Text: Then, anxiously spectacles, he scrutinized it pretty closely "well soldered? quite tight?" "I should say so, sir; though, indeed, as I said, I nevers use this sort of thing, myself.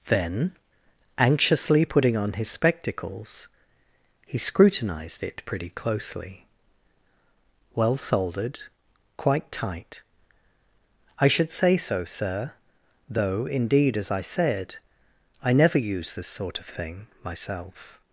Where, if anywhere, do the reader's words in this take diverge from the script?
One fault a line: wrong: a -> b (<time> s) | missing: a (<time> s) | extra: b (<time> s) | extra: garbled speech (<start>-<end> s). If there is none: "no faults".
extra: putting on his (1.8 s)
wrong: nevers -> never (15.5 s)